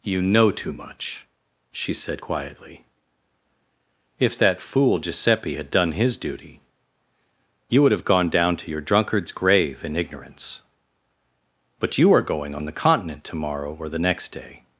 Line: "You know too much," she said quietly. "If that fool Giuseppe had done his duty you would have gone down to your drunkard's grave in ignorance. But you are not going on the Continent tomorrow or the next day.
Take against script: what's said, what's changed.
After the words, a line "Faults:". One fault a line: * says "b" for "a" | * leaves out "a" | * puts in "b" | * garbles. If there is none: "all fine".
"You know too much," she said quietly. "If that fool Giuseppe had done his duty you would have gone down to your drunkard's grave in ignorance. But you are going on the Continent tomorrow or the next day.
Faults:
* leaves out "not"